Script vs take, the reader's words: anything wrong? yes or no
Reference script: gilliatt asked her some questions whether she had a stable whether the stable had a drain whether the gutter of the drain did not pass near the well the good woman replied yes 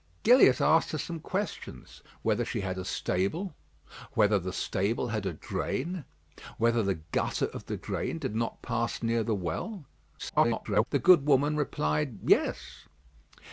yes